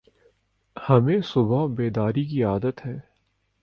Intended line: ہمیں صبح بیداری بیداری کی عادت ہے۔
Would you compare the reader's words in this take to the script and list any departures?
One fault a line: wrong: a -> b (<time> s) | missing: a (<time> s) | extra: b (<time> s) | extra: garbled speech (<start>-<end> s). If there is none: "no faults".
missing: بیداری (2.2 s)